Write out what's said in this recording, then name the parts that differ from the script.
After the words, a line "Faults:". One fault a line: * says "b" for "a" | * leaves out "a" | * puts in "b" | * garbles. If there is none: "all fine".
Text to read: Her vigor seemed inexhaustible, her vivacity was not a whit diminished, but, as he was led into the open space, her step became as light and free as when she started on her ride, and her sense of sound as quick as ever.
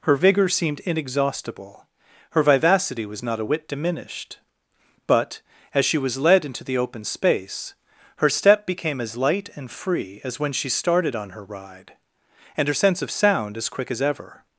Her vigor seemed inexhaustible, her vivacity was not a whit diminished, but, as she was led into the open space, her step became as light and free as when she started on her ride, and her sense of sound as quick as ever.
Faults:
* says "she" for "he"